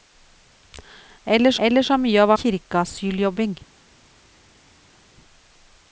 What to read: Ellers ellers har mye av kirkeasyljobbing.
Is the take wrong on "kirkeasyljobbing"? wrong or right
right